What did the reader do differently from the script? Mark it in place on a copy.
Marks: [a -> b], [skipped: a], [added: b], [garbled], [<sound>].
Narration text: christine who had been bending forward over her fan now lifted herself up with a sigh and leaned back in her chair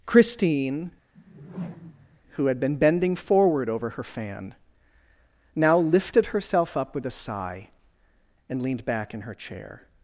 christine [whoosh] who had been bending forward over her fan now lifted herself up with a sigh and leaned back in her chair